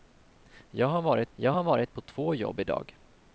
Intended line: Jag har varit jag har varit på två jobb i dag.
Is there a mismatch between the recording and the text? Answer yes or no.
no